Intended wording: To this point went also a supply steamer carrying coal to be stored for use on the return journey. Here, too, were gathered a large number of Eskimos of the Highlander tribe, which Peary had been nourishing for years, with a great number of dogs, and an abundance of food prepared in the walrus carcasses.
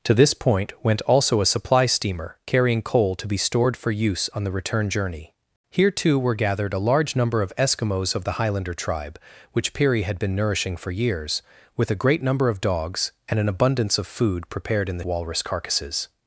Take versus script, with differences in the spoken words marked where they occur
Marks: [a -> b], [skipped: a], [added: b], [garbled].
To this point went also a supply steamer carrying coal to be stored for use on the return journey. Here, too, were gathered a large number of Eskimos of the Highlander tribe, which Peary had been nourishing for years, with a great number of dogs, and an abundance of food prepared in the walrus carcasses.